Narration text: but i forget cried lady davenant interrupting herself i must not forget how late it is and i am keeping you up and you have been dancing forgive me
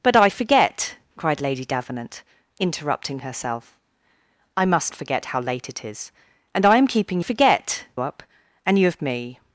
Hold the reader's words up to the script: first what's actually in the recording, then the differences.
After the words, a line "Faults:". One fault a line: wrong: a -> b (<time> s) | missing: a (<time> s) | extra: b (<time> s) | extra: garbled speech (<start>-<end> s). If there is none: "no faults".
but i forget cried lady davenant interrupting herself i must forget how late it is and i am keeping forget up and you have me
Faults:
missing: not (4.9 s)
wrong: you -> forget (7.2 s)
missing: been dancing forgive (9.0 s)